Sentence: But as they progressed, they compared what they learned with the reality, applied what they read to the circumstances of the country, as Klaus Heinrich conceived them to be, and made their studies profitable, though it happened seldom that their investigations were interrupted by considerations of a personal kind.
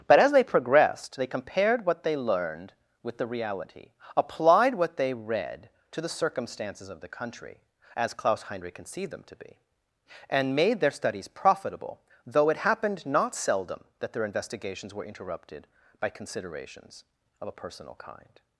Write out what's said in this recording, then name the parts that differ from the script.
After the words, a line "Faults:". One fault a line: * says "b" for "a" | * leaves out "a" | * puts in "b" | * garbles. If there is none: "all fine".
But as they progressed, they compared what they learned with the reality, applied what they read to the circumstances of the country, as Klaus Heinrich conceived them to be, and made their studies profitable, though it happened not seldom that their investigations were interrupted by considerations of a personal kind.
Faults:
* puts in "not"